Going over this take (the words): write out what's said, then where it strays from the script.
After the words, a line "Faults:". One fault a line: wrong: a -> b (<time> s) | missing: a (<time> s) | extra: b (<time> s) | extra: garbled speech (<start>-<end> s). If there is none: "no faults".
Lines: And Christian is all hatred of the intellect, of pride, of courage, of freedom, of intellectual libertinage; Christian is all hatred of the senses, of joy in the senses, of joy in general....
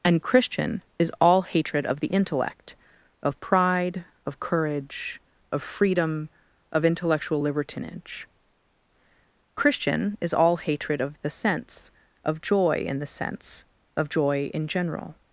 And Christian is all hatred of the intellect, of pride, of courage, of freedom, of intellectual libertinage; Christian is all hatred of the sense, of joy in the sense, of joy in general....
Faults:
wrong: senses -> sense (11.3 s)
wrong: senses -> sense (13.1 s)